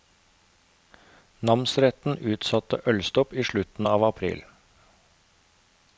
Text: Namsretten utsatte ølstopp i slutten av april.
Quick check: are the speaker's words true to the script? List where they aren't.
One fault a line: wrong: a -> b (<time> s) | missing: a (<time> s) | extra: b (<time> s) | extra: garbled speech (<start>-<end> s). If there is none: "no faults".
no faults